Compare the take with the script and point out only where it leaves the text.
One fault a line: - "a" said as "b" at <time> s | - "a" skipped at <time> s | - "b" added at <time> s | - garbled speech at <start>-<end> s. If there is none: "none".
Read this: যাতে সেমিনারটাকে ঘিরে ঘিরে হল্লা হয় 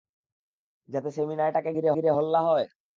none